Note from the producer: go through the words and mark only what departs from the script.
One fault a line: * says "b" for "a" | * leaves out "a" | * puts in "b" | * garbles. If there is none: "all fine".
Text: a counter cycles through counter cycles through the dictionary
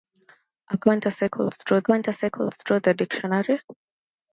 all fine